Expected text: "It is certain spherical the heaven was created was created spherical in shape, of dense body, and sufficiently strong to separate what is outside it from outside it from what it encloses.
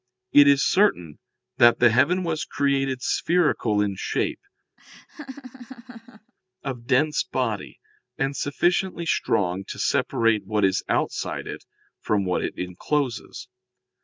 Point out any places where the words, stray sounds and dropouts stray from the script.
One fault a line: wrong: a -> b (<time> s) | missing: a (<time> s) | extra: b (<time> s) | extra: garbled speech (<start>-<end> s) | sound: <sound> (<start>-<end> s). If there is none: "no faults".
wrong: spherical -> that (1.6 s)
missing: was created (3.0 s)
sound: laugh (4.8-6.3 s)
missing: outside it from (12.2 s)